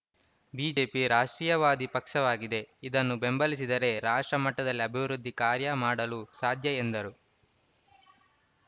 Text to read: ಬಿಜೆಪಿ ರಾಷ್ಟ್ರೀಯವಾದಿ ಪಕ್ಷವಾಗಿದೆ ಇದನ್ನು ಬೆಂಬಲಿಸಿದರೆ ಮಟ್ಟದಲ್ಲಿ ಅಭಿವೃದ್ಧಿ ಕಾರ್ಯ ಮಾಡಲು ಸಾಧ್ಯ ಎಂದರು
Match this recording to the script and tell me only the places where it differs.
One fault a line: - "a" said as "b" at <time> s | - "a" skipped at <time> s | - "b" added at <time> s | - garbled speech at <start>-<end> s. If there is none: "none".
- "ರಾಷ್ಟ್ರ" added at 4.0 s